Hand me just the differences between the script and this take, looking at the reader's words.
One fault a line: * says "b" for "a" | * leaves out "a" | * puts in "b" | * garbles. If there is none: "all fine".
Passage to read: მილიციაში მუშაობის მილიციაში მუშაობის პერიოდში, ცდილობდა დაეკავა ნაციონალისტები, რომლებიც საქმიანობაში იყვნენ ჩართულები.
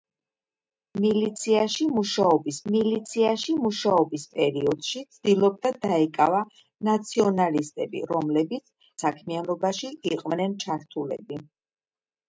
all fine